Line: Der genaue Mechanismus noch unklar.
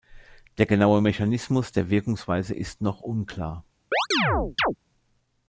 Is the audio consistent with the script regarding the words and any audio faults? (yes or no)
no